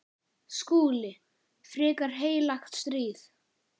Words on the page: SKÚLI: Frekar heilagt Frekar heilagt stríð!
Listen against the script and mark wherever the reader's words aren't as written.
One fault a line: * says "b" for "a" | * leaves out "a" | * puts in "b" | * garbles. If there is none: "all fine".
* leaves out "Frekar heilagt"